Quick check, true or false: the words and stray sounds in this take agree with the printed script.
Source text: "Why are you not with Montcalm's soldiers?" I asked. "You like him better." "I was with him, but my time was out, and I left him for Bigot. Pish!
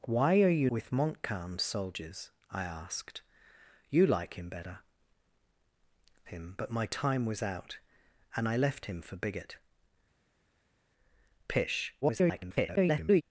false